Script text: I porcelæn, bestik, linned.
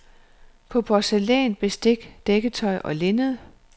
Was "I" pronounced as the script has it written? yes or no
no